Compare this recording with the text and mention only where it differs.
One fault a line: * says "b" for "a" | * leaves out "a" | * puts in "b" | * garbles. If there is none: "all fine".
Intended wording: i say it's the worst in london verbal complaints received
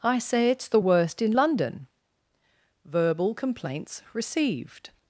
all fine